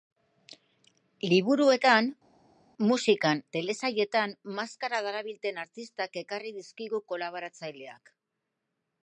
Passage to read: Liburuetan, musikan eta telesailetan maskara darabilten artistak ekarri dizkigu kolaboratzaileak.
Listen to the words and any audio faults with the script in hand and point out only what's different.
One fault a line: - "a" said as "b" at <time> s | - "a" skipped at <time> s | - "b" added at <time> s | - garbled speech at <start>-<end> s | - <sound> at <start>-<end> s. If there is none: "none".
- "eta" skipped at 3.4 s